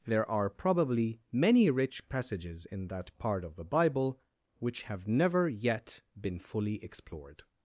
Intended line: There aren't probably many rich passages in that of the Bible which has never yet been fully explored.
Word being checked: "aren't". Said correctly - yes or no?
no